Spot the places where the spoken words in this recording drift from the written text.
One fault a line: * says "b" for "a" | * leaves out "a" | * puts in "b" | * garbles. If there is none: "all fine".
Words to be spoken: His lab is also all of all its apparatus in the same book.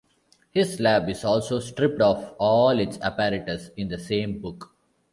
* says "stripped" for "all"